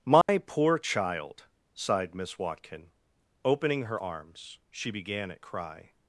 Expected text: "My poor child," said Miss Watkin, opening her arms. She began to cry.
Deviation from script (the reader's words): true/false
true